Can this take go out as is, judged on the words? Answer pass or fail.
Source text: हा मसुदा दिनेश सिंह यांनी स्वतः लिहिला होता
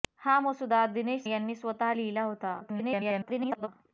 fail